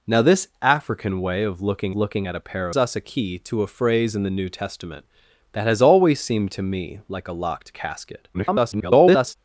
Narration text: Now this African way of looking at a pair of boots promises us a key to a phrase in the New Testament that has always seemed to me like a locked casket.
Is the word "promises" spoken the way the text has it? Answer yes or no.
no